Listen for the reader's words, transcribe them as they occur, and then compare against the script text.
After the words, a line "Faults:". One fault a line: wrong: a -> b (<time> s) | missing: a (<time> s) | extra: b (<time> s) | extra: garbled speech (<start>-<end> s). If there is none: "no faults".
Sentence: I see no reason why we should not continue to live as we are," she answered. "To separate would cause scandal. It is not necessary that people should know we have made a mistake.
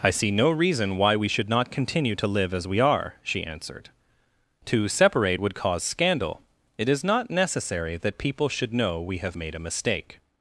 I see no reason why we should not continue to live as we are," she answered. "To separate would cause scandal. It is not necessary that people should know we have made a mistake.
Faults:
no faults